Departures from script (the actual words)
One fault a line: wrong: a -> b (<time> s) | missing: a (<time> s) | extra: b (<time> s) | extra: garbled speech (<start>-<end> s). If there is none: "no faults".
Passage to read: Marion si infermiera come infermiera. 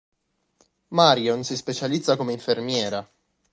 wrong: infermiera -> specializza (1.6 s)